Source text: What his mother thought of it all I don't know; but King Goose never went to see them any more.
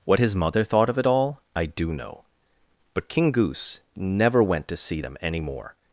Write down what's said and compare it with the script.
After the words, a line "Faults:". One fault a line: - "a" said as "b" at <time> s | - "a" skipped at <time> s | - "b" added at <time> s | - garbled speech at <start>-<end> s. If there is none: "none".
What his mother thought of it all I do know; but King Goose never went to see them any more.
Faults:
- "don't" said as "do" at 1.6 s